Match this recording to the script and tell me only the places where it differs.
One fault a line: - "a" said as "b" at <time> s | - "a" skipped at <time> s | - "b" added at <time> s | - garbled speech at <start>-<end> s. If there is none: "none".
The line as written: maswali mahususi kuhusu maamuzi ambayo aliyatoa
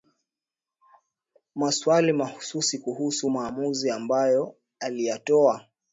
none